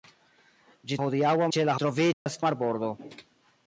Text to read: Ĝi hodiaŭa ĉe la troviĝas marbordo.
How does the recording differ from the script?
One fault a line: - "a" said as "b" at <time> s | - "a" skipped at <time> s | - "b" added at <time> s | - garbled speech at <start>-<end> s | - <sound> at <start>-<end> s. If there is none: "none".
- dropout at 2.1-2.3 s